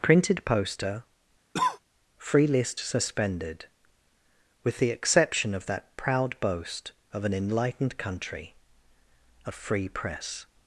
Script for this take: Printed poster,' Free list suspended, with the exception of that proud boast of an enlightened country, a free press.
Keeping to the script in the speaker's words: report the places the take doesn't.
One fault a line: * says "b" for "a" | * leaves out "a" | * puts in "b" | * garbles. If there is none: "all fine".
all fine